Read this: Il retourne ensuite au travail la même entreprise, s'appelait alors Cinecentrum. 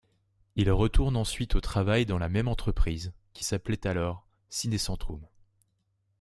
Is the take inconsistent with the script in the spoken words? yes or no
yes